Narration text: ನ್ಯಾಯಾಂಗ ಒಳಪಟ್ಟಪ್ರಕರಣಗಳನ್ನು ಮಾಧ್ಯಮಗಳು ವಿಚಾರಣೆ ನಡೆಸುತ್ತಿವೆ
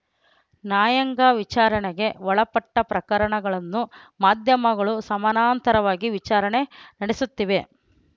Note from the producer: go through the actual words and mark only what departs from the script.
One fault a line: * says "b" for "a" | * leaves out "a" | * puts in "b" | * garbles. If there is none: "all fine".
* puts in "ವಿಚಾರಣೆಗೆ"
* puts in "ಸಮಾನಾಂತರವಾಗಿ"